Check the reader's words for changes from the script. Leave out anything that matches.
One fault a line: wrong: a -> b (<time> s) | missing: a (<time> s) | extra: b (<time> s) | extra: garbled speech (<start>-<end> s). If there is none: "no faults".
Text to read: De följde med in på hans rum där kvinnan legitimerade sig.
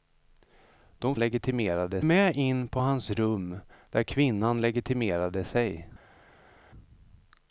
wrong: följde -> legitimerade (1.2 s)